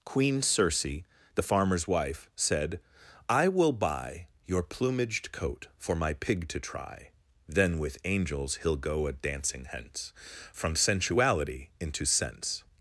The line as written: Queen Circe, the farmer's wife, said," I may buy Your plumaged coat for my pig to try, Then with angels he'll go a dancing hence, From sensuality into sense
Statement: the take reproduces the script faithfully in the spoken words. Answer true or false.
false